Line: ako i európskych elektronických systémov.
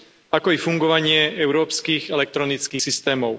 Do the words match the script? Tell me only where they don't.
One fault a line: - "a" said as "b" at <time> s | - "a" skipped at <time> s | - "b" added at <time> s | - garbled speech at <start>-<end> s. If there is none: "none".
- "fungovanie" added at 0.6 s